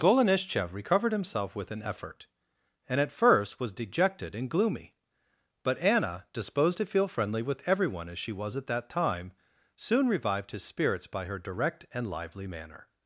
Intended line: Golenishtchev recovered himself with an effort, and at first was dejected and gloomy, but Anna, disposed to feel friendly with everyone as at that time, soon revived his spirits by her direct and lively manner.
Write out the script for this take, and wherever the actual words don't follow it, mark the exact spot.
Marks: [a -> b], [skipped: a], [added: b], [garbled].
Golenishtchev recovered himself with an effort, and at first was dejected and gloomy, but Anna, disposed to feel friendly with everyone as [added: she was] at that time, soon revived his spirits by her direct and lively manner.